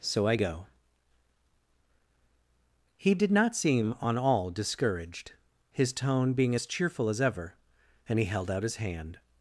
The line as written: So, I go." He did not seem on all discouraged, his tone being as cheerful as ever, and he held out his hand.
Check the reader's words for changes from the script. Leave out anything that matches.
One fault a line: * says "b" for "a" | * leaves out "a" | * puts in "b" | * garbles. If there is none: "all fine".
all fine